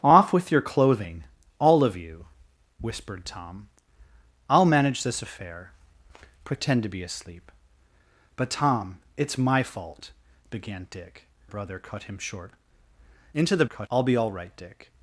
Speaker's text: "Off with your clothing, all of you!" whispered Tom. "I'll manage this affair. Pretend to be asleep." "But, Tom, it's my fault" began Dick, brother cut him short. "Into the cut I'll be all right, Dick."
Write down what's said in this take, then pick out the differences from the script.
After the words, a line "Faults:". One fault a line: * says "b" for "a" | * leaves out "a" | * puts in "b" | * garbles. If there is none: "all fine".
"Off with your clothing, all of you!" whispered Tom. "I'll manage this affair. Pretend to be asleep." "But, Tom, it's my fault" began Dick, brother cut him short. "Into the cut I'll be all right, Dick."
Faults:
all fine